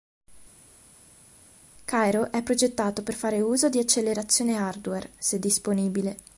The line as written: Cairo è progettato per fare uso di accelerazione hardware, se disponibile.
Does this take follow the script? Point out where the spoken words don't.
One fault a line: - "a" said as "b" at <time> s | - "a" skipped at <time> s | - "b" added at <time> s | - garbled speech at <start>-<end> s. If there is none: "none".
none